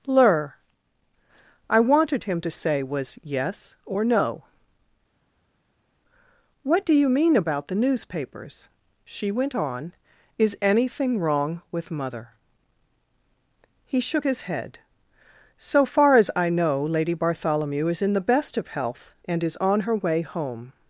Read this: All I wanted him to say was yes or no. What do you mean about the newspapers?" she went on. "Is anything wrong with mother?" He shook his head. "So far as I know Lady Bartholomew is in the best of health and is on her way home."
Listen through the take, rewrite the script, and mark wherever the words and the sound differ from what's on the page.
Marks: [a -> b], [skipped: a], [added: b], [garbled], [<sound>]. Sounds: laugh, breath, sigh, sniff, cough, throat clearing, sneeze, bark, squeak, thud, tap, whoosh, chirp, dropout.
[All -> Lur] I wanted him to say was yes or no. What do you mean about the newspapers?" she went on. "Is anything wrong with mother?" He shook his head. "So far as I know Lady Bartholomew is in the best of health and is on her way home."